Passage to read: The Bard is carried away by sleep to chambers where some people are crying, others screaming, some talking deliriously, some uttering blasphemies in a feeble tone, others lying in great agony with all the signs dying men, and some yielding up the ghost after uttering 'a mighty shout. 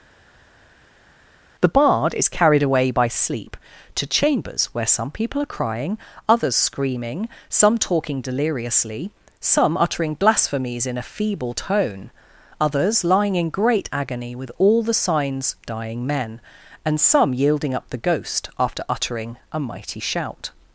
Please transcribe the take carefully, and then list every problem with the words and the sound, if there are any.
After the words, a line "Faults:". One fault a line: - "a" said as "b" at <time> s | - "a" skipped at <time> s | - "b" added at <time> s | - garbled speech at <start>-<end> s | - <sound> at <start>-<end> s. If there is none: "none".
The Bard is carried away by sleep to chambers where some people are crying, others screaming, some talking deliriously, some uttering blasphemies in a feeble tone, others lying in great agony with all the signs dying men, and some yielding up the ghost after uttering 'a mighty shout.
Faults:
none